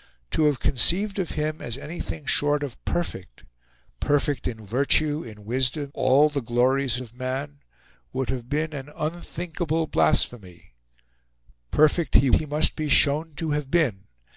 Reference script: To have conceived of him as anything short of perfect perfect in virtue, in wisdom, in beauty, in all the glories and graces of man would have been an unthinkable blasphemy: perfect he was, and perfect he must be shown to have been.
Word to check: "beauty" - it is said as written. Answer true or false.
false